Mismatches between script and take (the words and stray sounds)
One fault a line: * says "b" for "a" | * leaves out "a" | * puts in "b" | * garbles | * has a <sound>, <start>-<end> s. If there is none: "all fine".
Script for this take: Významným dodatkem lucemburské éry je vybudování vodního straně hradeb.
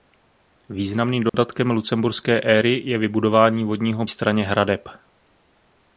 * has a dropout, 1.3-1.3 s